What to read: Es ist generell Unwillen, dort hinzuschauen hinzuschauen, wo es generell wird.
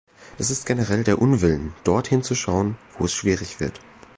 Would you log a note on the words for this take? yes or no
yes